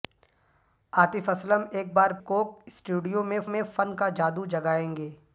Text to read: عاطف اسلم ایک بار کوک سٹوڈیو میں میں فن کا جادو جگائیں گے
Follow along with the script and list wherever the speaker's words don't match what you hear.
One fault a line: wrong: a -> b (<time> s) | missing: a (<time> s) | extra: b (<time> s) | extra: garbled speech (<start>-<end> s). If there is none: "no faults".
no faults